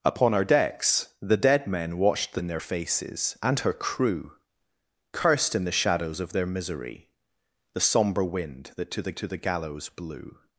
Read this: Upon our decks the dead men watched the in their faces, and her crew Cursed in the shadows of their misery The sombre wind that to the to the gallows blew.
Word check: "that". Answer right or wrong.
right